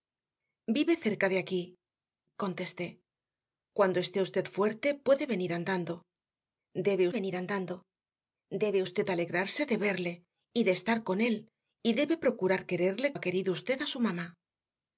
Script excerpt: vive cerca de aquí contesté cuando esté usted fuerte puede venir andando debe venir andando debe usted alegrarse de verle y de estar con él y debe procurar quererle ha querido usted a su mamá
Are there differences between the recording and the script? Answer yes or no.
no